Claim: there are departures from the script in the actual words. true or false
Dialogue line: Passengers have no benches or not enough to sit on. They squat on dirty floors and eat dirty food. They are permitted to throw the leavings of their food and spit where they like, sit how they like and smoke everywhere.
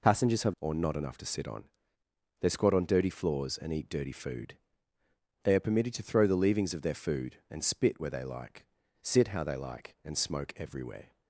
true